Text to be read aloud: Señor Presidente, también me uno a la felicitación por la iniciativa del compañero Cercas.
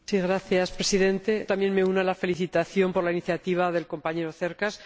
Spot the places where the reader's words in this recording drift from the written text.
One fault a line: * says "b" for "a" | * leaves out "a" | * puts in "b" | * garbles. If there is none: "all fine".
all fine